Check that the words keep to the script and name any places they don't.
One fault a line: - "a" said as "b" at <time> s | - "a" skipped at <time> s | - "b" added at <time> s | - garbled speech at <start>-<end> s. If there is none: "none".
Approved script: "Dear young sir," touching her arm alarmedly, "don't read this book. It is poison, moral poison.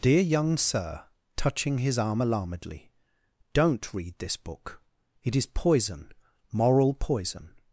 - "her" said as "his" at 1.8 s